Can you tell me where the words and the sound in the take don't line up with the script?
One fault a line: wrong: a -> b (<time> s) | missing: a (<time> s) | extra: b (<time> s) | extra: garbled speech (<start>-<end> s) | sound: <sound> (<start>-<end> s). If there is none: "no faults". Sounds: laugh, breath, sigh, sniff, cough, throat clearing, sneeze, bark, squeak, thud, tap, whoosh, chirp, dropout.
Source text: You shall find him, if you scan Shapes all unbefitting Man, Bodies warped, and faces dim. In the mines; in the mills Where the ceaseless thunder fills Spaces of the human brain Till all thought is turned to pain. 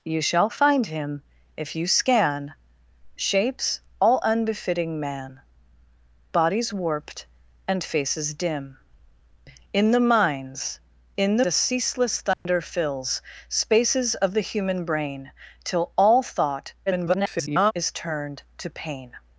missing: mills Where (11.4 s)
sound: dropout (12.3-12.5 s)
extra: garbled speech (16.9-17.7 s)